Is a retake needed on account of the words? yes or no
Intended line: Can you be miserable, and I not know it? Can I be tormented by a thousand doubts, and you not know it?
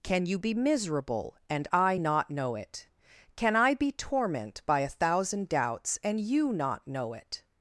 yes